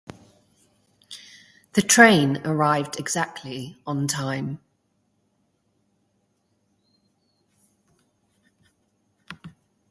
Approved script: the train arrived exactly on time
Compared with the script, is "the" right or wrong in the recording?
right